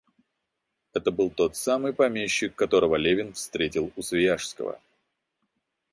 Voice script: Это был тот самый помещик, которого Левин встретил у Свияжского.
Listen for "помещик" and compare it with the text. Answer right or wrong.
right